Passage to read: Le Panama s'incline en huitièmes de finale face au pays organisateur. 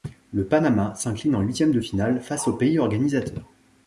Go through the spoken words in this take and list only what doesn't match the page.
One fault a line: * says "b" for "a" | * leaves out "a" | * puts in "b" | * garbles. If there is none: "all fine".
all fine